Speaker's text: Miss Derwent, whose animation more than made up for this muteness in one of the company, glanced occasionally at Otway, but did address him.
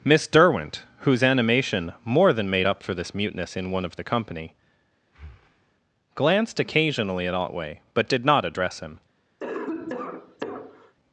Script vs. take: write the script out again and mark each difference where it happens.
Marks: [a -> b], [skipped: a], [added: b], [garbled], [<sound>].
Miss Derwent, whose animation more than made up for this muteness in one of the company, [breath] glanced occasionally at Otway, but did [added: not] address him. [cough]